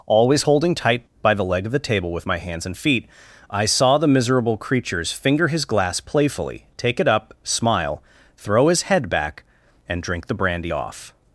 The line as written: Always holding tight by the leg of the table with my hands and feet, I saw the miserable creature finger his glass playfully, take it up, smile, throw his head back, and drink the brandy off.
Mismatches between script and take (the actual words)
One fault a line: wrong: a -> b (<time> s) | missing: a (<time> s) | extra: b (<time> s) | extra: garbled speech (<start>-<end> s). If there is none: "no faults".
wrong: creature -> creatures (4.6 s)